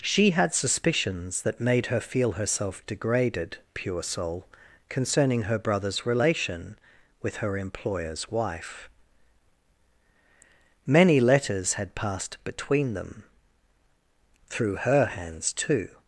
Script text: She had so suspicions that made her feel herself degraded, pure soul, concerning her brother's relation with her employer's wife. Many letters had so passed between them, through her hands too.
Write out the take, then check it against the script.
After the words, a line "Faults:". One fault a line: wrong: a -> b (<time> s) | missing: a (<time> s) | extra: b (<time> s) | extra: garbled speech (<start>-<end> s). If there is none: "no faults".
She had suspicions that made her feel herself degraded, pure soul, concerning her brother's relation with her employer's wife. Many letters had passed between them, through her hands too.
Faults:
missing: so (0.6 s)
missing: so (11.9 s)